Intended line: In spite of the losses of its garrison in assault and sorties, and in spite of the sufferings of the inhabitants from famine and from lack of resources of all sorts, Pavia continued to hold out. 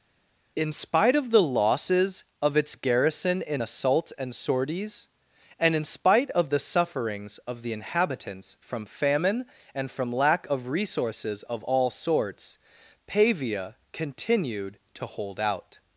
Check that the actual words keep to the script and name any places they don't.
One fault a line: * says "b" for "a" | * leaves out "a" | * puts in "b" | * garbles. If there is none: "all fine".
all fine